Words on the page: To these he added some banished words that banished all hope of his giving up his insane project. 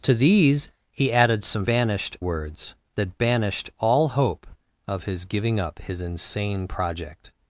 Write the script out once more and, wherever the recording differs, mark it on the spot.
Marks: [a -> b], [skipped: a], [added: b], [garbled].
To these he added some banished words that banished all hope of his giving up his insane project.